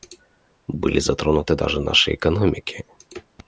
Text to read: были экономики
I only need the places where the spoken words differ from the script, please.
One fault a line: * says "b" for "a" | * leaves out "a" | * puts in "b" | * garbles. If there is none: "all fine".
* puts in "затронуты даже наши"